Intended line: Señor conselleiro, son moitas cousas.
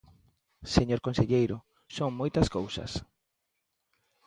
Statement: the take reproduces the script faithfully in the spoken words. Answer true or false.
true